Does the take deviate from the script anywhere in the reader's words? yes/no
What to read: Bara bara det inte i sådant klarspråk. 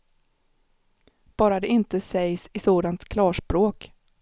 yes